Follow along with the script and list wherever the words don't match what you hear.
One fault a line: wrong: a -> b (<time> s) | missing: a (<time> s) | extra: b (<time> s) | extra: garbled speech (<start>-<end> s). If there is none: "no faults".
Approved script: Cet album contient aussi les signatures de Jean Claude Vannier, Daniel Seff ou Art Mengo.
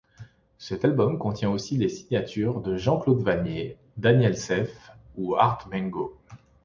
no faults